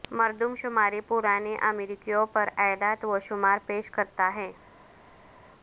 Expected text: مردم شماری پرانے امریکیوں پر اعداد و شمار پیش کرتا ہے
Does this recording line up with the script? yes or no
yes